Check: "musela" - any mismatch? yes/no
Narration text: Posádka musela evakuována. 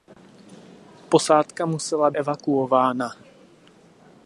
no